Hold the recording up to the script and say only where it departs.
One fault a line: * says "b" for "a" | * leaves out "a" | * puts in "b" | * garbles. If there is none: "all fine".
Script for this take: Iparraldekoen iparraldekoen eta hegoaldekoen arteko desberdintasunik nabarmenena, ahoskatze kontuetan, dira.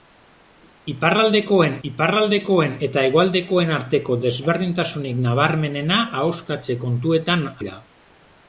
all fine